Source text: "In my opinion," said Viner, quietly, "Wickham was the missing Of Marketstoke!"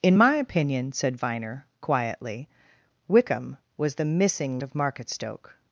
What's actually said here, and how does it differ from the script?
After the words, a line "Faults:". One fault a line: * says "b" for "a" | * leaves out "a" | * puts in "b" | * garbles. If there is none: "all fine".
"In my opinion," said Viner, quietly, "Wickham was the missing Of Marketstoke!"
Faults:
all fine